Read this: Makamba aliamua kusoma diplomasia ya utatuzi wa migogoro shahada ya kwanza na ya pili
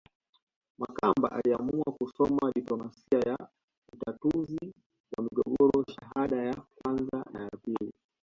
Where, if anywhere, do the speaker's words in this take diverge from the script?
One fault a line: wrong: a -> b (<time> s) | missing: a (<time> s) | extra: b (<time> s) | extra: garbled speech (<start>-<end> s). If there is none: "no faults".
no faults